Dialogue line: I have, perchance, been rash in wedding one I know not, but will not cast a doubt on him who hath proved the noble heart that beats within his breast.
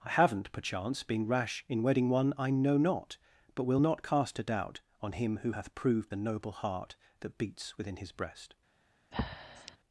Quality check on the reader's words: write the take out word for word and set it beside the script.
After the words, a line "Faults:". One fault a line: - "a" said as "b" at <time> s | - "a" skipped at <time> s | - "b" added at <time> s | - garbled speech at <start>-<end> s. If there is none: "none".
I haven't, perchance, been rash in wedding one I know not, but will not cast a doubt on him who hath proved the noble heart that beats within his breast.
Faults:
- "have" said as "haven't" at 0.1 s